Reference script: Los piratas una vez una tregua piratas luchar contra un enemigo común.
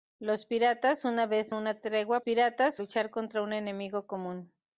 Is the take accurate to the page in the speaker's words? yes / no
yes